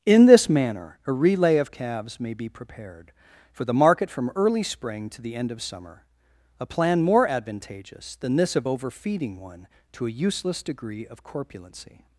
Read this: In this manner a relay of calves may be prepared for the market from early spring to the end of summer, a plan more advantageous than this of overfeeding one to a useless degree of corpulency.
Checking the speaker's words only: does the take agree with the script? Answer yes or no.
yes